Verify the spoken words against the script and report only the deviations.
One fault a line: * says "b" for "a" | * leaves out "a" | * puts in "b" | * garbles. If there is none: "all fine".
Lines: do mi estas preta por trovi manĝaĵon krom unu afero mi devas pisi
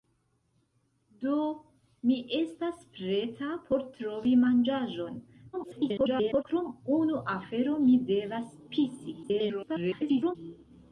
* garbles
* garbles